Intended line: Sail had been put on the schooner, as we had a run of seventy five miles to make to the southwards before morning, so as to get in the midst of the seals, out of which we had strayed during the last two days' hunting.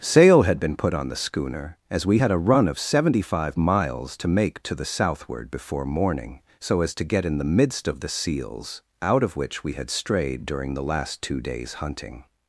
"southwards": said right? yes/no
no